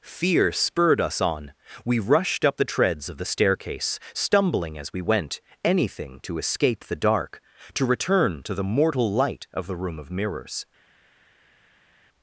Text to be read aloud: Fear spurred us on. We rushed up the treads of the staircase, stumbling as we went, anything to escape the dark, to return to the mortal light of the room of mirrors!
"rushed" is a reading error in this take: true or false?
false